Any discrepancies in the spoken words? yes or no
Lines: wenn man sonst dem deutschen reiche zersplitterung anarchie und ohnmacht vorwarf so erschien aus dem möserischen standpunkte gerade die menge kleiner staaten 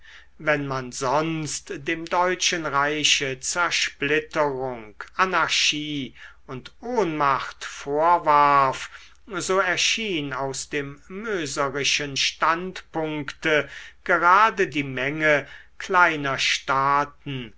no